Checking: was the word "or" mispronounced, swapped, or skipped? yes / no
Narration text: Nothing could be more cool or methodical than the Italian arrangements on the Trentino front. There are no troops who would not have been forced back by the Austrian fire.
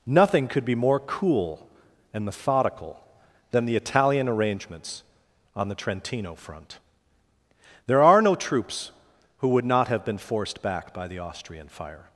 yes